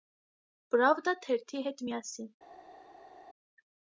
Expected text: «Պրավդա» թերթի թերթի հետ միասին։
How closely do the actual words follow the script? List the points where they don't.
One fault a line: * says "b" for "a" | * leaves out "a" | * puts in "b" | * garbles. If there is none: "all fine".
* leaves out "թերթի"